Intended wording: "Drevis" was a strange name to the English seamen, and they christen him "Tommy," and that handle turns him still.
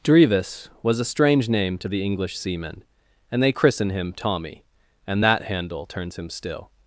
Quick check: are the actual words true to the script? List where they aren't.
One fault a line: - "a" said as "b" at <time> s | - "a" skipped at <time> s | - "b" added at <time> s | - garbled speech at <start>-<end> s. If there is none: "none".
none